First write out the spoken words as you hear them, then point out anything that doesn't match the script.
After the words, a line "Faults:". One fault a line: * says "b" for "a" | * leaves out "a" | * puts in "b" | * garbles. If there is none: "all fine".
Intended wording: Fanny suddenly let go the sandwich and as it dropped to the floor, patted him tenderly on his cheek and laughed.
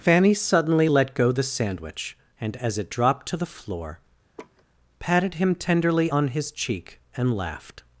Fanny suddenly let go the sandwich and as it dropped to the floor, patted him tenderly on his cheek and laughed.
Faults:
all fine